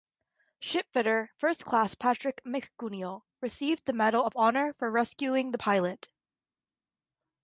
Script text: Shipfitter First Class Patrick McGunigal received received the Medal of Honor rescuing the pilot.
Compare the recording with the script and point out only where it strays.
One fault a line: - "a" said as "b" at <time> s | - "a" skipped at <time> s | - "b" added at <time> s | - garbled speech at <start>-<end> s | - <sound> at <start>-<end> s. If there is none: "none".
- "received" skipped at 3.9 s
- "for" added at 4.7 s